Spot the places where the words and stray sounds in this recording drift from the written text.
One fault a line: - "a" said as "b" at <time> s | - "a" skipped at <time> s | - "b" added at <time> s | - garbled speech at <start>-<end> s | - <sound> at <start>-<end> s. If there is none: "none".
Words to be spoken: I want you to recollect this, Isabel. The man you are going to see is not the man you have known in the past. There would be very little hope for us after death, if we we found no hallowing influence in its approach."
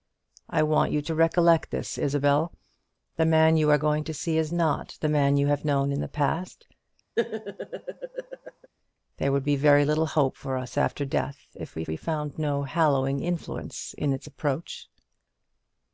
- laugh at 7.2-8.7 s